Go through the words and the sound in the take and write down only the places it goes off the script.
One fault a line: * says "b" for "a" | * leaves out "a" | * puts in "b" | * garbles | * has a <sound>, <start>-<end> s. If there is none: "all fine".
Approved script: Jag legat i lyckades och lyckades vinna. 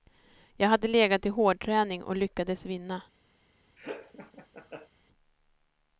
* puts in "hade"
* says "hårdträning" for "lyckades"
* has a laugh, 3.8-4.9 s